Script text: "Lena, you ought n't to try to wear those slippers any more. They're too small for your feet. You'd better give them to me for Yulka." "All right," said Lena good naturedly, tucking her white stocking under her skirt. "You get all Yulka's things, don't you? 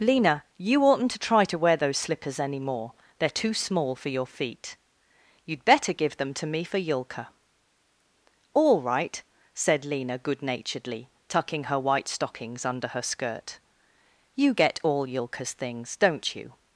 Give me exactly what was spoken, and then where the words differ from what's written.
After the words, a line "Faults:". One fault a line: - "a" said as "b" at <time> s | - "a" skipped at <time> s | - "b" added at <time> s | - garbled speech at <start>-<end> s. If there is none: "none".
"Lena, you ought n't to try to wear those slippers any more. They're too small for your feet. You'd better give them to me for Yulka." "All right," said Lena good naturedly, tucking her white stockings under her skirt. "You get all Yulka's things, don't you?
Faults:
- "stocking" said as "stockings" at 12.1 s